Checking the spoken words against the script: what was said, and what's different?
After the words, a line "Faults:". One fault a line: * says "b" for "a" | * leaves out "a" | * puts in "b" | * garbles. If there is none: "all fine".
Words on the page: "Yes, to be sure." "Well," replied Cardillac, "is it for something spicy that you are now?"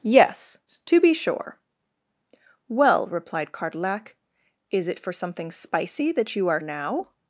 "Yes, to be sure." "Well," replied Cardillac, "is it for something spicy that you are now?"
Faults:
all fine